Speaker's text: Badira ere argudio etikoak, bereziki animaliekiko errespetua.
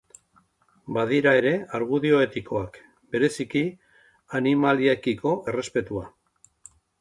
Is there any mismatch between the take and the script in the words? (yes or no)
no